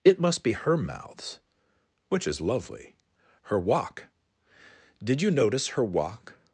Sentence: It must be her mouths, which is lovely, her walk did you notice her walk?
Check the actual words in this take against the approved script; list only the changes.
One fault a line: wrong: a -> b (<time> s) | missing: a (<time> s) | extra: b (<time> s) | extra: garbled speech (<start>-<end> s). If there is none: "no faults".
no faults